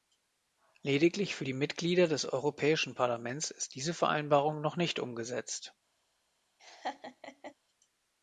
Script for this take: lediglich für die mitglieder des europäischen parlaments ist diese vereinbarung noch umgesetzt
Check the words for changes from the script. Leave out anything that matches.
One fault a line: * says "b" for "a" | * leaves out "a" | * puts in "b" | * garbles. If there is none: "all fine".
* puts in "nicht"